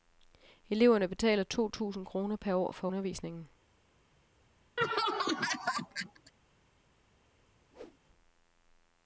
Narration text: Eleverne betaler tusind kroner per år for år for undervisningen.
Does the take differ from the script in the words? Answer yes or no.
yes